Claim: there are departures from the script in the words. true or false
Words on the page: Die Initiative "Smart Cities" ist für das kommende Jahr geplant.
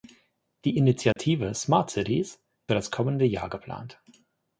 true